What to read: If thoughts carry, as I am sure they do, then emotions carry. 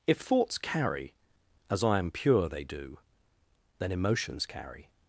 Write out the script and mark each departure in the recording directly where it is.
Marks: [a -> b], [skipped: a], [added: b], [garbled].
If thoughts carry, as I am [sure -> pure] they do, then emotions carry.